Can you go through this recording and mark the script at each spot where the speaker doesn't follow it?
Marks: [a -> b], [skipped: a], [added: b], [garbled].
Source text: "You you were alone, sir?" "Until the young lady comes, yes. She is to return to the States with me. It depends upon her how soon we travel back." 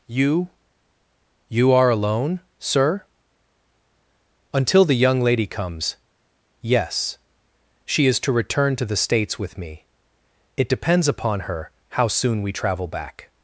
"You you [were -> are] alone, sir?" "Until the young lady comes, yes. She is to return to the States with me. It depends upon her how soon we travel back."